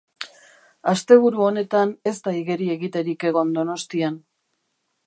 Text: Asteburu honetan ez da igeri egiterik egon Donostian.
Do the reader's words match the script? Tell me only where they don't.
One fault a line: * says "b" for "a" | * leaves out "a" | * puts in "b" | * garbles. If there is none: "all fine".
all fine